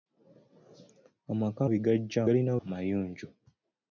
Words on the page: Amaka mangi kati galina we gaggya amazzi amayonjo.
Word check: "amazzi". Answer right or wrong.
wrong